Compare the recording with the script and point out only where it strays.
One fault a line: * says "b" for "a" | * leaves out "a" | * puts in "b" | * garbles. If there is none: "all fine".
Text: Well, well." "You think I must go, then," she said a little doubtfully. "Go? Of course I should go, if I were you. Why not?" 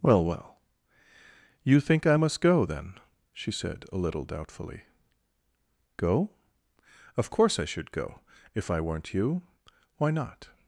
* says "weren't" for "were"